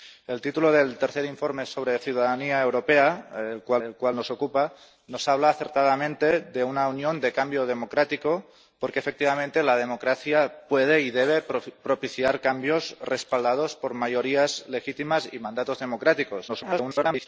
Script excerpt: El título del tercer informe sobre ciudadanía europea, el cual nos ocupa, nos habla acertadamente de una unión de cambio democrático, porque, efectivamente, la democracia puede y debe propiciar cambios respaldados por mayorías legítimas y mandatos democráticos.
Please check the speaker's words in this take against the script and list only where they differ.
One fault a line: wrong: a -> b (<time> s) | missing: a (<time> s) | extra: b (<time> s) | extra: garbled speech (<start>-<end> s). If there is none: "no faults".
extra: el cual (3.8 s)
extra: garbled speech (16.5-17.3 s)